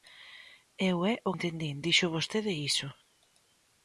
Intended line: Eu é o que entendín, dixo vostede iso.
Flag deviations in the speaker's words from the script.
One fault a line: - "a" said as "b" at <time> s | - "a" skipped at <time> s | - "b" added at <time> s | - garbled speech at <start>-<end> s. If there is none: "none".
- "que" skipped at 1.3 s